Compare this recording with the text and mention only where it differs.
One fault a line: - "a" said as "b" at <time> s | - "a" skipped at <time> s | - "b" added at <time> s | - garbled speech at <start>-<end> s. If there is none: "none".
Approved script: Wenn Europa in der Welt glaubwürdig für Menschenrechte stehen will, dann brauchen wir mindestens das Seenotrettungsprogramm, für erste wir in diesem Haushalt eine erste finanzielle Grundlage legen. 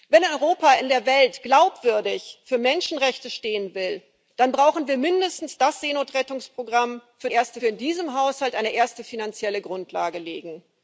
none